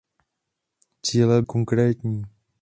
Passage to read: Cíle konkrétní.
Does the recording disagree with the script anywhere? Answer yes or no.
no